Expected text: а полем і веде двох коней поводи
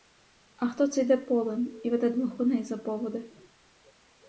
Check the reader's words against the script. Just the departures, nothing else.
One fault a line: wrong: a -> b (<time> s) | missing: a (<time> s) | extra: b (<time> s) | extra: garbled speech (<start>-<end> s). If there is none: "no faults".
extra: хто це йде (0.7 s)
extra: за (2.6 s)